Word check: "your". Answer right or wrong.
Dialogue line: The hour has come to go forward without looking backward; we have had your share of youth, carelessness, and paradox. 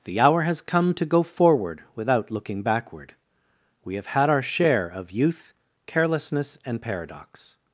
wrong